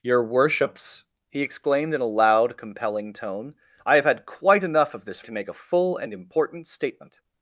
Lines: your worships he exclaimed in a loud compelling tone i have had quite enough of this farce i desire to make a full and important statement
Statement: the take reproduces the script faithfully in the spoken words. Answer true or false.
false